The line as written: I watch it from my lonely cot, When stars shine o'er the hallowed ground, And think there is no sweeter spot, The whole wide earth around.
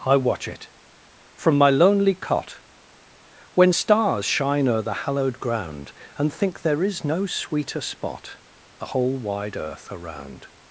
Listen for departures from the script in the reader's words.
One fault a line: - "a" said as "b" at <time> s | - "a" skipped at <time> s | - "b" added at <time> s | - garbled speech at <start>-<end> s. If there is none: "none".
none